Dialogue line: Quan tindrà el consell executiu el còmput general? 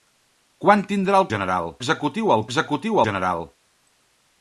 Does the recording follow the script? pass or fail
fail